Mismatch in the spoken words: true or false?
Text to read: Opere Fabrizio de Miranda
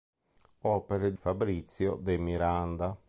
false